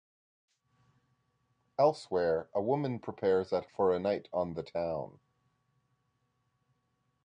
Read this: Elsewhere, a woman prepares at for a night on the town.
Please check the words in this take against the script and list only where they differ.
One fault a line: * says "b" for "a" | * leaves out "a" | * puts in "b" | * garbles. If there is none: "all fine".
all fine